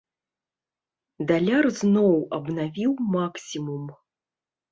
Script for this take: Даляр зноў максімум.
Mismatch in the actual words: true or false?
true